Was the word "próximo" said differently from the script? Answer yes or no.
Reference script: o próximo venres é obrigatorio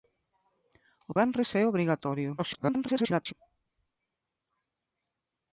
yes